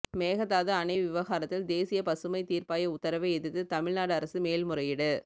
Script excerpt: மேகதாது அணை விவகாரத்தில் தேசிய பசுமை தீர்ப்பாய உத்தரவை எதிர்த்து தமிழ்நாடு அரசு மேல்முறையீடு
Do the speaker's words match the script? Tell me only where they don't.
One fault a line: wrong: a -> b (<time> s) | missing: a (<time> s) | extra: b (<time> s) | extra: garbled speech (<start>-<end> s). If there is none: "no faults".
no faults